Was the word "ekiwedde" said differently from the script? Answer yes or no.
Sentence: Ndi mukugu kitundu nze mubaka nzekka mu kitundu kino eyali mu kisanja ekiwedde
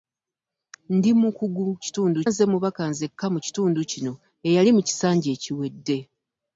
no